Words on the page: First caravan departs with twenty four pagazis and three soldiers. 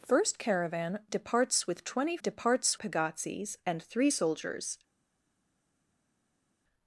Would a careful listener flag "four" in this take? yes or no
yes